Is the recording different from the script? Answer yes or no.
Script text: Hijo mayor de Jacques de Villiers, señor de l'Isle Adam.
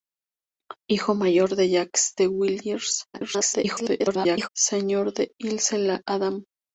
yes